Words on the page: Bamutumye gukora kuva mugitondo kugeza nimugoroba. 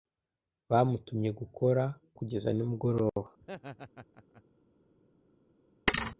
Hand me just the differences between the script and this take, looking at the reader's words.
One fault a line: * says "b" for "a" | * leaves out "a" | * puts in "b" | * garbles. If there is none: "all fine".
* leaves out "kuva mugitondo"